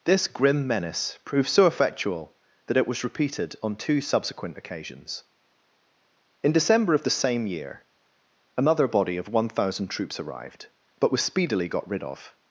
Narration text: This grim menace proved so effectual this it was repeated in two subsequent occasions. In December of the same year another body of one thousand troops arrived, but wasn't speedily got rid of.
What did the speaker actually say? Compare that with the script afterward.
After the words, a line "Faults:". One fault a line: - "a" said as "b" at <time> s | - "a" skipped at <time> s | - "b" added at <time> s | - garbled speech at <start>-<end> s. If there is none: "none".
This grim menace proved so effectual that it was repeated on two subsequent occasions. In December of the same year another body of one thousand troops arrived, but was speedily got rid of.
Faults:
- "this" said as "that" at 2.6 s
- "in" said as "on" at 3.6 s
- "wasn't" said as "was" at 11.1 s